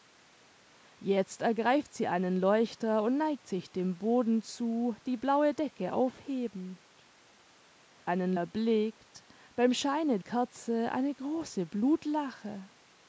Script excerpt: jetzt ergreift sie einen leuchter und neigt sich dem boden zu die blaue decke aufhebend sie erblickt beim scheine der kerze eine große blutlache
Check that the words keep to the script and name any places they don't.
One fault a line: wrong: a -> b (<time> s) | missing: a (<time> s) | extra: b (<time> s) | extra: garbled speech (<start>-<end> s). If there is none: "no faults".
wrong: sie -> einen (8.0 s)
missing: der (10.2 s)